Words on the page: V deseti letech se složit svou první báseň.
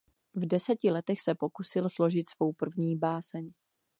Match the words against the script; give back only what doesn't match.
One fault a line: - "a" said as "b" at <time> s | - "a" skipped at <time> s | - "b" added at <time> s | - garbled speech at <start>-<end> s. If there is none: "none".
- "pokusil" added at 1.3 s